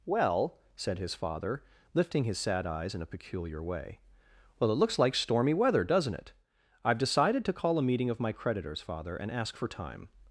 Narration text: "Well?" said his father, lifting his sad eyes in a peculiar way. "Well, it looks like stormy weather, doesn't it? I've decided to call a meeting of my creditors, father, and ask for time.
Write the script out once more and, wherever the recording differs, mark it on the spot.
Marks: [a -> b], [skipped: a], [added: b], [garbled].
"Well?" said his father, lifting his sad eyes in a peculiar way. "Well, it looks like stormy weather, doesn't it? I've decided to call a meeting of my creditors, father, and ask for time.